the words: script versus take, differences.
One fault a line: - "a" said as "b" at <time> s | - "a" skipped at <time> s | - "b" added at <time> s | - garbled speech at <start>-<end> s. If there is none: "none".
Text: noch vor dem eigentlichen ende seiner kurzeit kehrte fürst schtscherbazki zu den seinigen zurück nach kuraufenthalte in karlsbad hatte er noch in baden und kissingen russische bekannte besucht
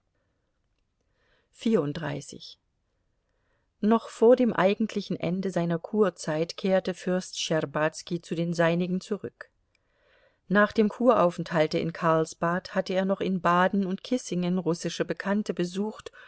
- "dem" added at 10.7 s